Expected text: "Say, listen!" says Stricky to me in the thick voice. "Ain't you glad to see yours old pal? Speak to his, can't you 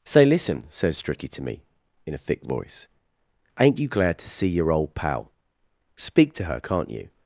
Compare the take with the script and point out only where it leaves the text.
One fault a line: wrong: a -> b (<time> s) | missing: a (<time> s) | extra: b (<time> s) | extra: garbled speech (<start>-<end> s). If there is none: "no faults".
wrong: the -> a (2.1 s)
wrong: yours -> your (4.5 s)
wrong: his -> her (6.5 s)